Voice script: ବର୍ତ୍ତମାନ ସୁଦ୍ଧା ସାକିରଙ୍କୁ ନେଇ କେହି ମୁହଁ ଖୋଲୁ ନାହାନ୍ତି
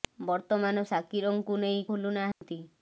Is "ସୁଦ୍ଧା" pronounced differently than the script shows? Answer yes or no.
yes